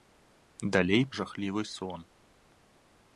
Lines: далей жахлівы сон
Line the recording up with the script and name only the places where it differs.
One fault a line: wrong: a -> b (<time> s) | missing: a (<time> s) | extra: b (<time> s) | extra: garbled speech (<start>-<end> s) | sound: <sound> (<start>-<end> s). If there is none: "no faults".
no faults